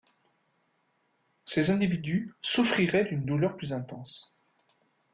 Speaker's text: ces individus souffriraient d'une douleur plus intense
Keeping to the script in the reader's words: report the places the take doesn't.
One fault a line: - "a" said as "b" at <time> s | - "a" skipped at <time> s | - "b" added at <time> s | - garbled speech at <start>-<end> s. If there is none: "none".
none